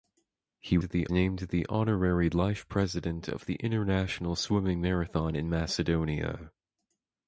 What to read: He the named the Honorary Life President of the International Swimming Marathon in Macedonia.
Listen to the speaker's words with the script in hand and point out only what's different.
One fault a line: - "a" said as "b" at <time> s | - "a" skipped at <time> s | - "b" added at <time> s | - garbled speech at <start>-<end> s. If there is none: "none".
none